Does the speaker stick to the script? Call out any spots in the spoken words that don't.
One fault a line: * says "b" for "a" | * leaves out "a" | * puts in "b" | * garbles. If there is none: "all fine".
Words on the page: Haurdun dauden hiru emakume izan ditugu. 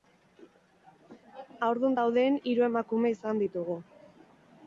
all fine